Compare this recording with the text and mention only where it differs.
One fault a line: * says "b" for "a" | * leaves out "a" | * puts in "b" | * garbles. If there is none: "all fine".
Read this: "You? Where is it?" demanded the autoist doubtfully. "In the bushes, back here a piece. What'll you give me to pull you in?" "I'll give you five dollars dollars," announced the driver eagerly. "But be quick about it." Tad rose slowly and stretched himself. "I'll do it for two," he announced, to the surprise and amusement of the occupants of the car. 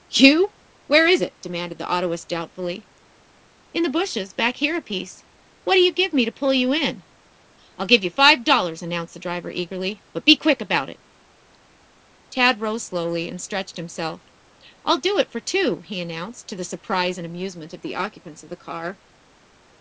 * leaves out "dollars"